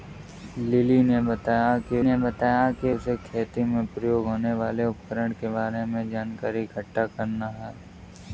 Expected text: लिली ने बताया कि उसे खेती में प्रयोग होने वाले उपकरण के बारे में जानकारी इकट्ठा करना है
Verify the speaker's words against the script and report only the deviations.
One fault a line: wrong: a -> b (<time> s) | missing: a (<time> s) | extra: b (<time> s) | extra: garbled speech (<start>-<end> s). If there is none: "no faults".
extra: ने बताया कि (2.0 s)